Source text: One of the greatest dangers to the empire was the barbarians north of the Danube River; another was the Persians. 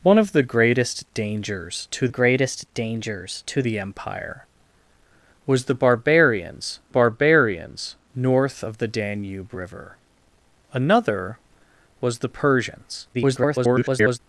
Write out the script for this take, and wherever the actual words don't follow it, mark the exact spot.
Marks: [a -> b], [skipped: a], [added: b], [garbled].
One of the greatest dangers to [added: greatest dangers to] the empire was the barbarians [added: barbarians] north of the Danube River; another was the Persians. [garbled]